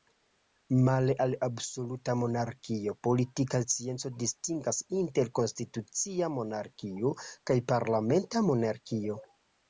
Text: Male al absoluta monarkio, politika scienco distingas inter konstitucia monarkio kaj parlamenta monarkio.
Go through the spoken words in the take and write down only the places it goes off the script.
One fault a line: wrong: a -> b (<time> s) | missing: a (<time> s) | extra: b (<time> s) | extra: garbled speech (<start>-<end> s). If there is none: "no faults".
no faults